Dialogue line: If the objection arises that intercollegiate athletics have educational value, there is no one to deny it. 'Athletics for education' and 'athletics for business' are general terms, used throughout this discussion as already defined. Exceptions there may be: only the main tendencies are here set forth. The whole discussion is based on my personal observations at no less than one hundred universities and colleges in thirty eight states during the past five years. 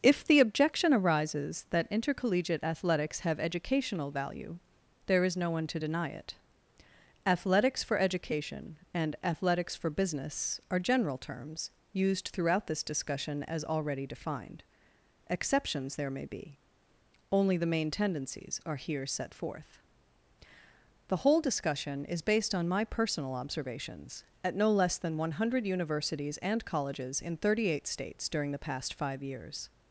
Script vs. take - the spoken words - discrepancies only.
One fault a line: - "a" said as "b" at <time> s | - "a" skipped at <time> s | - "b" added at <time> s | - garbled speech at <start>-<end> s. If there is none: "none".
none